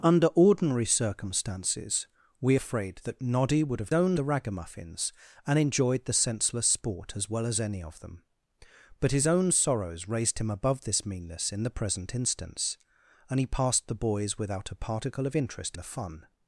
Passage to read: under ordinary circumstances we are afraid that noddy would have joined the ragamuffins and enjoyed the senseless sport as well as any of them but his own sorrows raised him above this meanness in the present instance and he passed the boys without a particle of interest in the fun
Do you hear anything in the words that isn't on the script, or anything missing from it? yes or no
yes